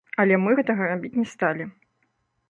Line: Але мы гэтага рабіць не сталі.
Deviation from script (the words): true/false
false